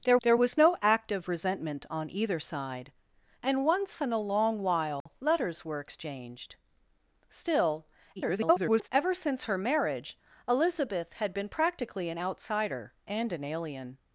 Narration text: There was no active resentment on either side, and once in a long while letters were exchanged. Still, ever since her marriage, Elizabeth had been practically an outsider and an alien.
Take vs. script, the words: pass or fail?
fail